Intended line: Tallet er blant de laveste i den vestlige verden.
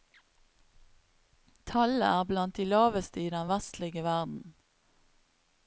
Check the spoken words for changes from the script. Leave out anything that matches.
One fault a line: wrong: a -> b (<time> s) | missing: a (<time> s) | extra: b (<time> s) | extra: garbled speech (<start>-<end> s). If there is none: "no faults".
no faults